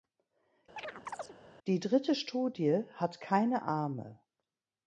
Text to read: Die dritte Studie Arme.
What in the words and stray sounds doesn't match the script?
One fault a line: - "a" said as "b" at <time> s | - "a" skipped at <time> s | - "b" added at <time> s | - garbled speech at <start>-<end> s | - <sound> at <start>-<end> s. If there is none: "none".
- chirp at 0.8-1.4 s
- "hat keine" added at 3.0 s